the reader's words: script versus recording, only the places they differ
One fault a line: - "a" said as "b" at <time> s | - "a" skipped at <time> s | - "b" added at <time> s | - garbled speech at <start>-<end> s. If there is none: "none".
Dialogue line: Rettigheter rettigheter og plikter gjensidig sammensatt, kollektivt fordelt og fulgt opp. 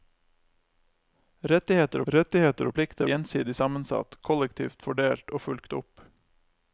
none